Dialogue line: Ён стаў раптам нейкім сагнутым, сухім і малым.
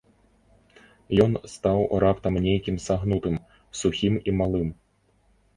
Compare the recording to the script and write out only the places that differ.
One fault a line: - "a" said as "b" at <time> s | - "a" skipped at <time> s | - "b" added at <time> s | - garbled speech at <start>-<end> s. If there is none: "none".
none